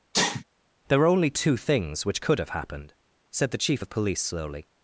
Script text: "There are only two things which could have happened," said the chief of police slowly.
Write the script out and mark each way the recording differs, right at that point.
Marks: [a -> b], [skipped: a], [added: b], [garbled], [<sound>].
[sneeze] "There are only two things which could have happened," said the chief of police slowly.